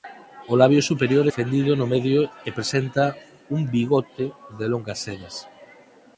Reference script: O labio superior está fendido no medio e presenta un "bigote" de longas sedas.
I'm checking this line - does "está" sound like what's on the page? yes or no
no